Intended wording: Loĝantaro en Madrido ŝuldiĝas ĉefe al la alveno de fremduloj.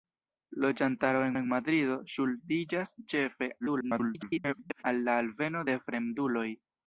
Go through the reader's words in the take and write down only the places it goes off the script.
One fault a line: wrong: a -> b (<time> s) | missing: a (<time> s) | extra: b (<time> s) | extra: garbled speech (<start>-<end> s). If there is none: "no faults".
extra: en (1.4 s)
extra: garbled speech (3.6-4.8 s)